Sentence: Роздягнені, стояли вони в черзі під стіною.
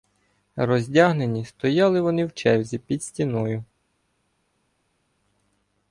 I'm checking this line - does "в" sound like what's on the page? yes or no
yes